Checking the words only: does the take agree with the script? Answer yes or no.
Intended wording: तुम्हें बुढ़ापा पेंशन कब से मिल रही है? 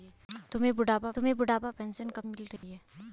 no